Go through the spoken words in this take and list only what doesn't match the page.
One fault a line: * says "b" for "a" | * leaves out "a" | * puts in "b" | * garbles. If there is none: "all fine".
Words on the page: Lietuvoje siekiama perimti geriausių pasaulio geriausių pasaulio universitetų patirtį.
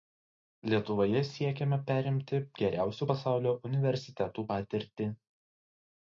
* leaves out "geriausių pasaulio"